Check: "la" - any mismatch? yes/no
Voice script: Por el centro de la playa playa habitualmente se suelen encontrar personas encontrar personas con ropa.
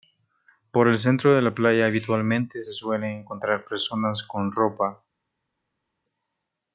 no